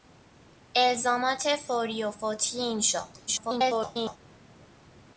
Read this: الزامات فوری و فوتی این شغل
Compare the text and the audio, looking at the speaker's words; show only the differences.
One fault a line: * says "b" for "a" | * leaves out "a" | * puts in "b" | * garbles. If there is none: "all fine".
* garbles